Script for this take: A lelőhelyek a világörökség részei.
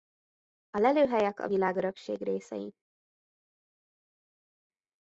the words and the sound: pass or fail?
pass